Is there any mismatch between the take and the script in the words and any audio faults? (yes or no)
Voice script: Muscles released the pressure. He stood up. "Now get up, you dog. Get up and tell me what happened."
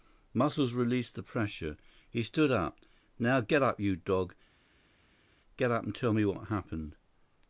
no